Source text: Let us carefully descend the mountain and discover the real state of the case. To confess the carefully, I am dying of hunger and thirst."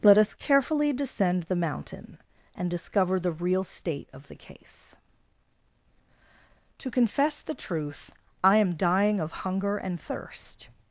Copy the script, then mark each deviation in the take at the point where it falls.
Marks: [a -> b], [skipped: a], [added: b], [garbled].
Let us carefully descend the mountain and discover the real state of the case. To confess the [carefully, -> truth] I am dying of hunger and thirst."